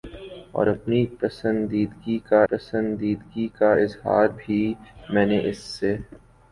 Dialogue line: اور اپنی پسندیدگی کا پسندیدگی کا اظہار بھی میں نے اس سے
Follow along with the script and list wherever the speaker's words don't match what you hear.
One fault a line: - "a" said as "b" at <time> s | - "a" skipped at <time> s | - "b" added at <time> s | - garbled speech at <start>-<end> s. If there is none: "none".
none